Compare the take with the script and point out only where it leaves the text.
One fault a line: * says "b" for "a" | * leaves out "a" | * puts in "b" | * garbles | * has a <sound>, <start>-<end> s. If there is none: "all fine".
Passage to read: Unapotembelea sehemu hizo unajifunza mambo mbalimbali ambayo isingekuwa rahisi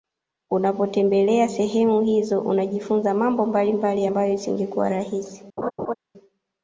* has a laugh, 5.6-5.9 s